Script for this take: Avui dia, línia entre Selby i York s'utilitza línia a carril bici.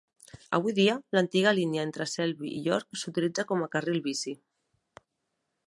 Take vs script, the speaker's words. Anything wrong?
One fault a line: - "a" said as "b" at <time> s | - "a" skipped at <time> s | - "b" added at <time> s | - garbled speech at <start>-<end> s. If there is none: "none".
- "l'antiga" added at 1.2 s
- "línia" said as "com" at 3.5 s